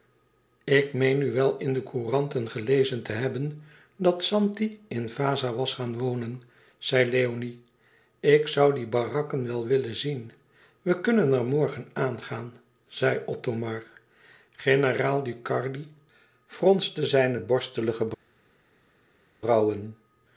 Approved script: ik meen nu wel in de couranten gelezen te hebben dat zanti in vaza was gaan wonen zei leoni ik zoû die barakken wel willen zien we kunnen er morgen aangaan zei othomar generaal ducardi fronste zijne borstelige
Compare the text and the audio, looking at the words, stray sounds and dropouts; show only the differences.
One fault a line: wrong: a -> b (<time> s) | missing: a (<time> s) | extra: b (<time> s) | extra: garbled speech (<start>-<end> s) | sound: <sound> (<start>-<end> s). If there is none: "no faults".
no faults